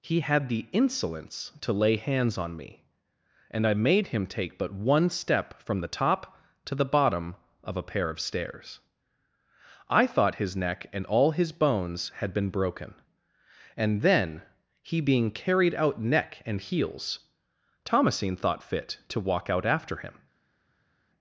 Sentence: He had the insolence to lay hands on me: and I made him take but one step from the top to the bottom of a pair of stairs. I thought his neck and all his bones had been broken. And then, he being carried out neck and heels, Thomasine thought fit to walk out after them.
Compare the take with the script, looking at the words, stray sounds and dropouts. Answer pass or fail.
fail